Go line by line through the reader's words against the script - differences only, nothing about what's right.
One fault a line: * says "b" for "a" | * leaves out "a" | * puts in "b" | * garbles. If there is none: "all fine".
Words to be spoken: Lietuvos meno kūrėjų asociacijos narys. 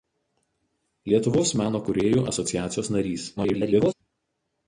* garbles